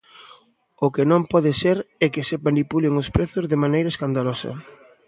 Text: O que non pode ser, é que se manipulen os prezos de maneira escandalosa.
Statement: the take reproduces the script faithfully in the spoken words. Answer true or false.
true